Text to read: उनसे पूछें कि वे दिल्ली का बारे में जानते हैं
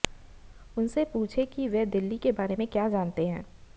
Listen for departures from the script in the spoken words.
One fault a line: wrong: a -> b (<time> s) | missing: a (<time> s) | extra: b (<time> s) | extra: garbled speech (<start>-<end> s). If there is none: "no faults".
wrong: का -> के (2.2 s)
extra: क्या (2.7 s)